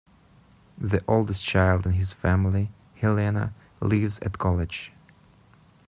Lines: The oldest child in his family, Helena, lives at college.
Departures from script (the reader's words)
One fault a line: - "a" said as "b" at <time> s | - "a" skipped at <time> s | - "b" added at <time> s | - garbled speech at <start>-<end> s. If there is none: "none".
none